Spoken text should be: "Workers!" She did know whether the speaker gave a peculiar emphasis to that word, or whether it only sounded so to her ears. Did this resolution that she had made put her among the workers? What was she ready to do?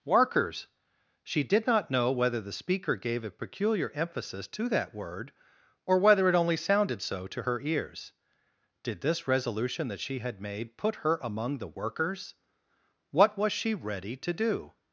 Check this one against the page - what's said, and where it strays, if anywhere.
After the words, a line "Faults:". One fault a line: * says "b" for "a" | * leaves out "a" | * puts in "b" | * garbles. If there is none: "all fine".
"Workers!" She did not know whether the speaker gave a peculiar emphasis to that word, or whether it only sounded so to her ears. Did this resolution that she had made put her among the workers? What was she ready to do?
Faults:
* puts in "not"